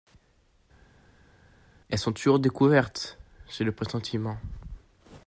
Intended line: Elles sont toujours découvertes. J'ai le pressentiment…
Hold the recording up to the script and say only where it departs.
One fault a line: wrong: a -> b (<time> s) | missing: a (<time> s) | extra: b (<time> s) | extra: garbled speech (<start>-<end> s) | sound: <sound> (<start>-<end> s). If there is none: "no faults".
no faults